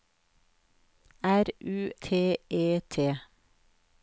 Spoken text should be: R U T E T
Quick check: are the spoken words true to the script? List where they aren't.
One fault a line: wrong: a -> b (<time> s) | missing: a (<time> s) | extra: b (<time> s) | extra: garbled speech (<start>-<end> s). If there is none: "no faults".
no faults